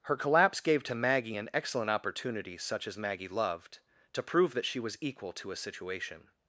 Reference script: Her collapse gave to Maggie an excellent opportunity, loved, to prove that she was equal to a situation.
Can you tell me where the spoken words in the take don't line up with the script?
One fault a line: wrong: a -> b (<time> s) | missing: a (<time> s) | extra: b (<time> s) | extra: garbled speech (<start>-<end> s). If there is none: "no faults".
extra: such as Maggie (2.6 s)